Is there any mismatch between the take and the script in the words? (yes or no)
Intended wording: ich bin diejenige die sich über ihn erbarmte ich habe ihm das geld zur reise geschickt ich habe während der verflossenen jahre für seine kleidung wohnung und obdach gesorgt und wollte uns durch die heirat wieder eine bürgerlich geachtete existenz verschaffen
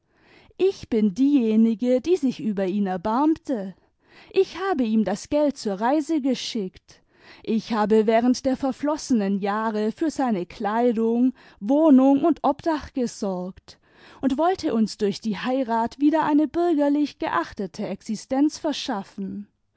no